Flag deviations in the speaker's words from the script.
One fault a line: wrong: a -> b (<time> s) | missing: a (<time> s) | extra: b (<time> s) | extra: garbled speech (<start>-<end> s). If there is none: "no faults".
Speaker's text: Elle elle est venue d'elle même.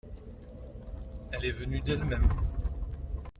missing: elle (1.4 s)